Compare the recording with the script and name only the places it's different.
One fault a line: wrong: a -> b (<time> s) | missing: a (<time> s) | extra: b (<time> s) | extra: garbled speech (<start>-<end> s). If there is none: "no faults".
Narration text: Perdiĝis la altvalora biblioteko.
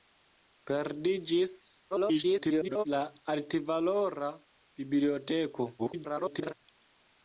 extra: garbled speech (1.9-2.8 s)
extra: garbled speech (5.8-6.5 s)